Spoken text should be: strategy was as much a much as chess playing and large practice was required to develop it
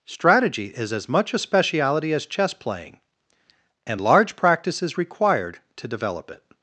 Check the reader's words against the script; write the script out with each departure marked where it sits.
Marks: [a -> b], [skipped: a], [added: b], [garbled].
strategy [was -> is] as much a [much -> speciality] as chess playing and large practice [was -> is] required to develop it